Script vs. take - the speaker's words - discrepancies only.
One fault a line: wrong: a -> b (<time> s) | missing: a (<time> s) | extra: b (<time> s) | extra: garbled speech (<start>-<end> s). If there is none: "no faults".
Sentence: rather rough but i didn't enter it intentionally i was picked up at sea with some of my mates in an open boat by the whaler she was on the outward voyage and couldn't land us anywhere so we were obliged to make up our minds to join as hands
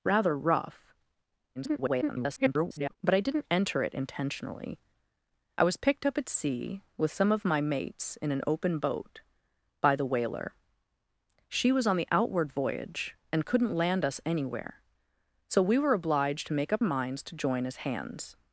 extra: garbled speech (1.5-3.0 s)
missing: our (16.8 s)